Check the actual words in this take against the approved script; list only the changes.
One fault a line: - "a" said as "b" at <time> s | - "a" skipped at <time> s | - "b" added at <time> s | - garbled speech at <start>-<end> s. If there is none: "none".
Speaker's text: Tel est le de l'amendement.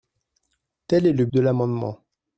none